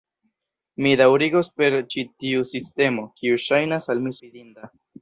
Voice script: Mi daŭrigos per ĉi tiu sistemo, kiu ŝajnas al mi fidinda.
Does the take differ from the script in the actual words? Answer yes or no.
no